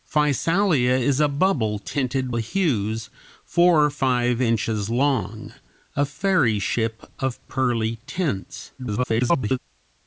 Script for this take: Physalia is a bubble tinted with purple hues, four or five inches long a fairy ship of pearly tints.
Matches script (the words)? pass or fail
fail